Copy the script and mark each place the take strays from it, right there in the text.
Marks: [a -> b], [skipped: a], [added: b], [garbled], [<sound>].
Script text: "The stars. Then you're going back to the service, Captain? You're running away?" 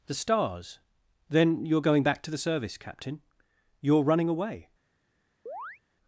"The stars. Then you're going back to the service, Captain? You're running away?" [chirp]